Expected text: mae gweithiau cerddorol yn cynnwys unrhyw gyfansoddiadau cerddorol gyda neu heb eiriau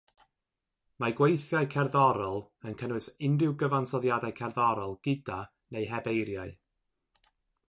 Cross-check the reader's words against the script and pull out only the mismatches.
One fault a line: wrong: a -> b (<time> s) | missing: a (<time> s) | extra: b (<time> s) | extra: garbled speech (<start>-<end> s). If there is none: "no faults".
no faults